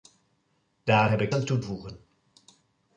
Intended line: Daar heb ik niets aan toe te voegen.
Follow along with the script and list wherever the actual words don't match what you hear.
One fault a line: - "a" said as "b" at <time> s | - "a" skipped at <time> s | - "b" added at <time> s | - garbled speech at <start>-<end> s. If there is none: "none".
- "niets" skipped at 1.3 s
- "te" skipped at 1.6 s